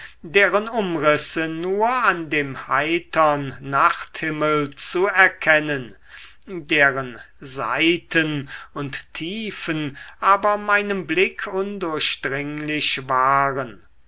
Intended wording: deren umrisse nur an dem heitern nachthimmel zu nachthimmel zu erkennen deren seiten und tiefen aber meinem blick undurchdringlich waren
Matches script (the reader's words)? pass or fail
fail